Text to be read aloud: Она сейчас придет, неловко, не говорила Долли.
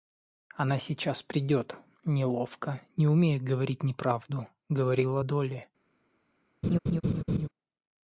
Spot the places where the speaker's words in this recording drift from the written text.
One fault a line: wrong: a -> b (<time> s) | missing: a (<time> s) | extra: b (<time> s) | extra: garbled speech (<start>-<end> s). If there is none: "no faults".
extra: умея говорить неправду (3.1 s)